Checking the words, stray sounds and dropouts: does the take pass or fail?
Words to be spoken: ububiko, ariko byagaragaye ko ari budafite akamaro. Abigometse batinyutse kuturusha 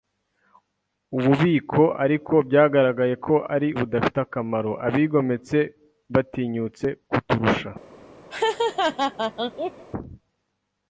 fail